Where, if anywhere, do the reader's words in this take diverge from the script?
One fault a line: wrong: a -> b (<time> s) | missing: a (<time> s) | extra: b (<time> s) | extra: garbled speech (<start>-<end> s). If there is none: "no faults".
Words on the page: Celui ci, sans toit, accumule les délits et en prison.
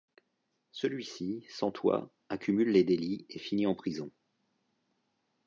extra: finit (3.4 s)